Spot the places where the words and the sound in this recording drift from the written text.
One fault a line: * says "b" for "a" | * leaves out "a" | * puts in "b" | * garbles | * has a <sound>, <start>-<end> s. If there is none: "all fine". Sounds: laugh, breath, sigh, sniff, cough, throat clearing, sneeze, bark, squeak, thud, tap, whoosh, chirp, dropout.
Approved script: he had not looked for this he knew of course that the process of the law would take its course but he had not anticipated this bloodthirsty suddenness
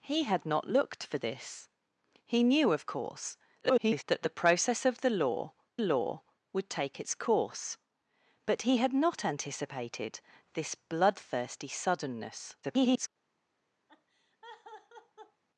* garbles
* puts in "law"
* garbles
* has a laugh, 13.9-15.4 s